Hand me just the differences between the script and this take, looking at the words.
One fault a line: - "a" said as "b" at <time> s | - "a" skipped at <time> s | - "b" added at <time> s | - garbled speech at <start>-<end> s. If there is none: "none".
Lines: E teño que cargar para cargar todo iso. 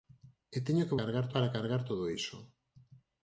none